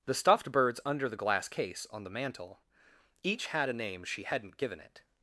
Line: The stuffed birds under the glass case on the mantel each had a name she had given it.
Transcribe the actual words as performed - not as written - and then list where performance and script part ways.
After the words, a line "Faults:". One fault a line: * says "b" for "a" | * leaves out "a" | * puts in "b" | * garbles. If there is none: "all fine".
The stuffed birds under the glass case on the mantel each had a name she hadn't given it.
Faults:
* says "hadn't" for "had"